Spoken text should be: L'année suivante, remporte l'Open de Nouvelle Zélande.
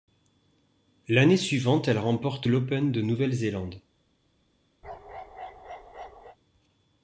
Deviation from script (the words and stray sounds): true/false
true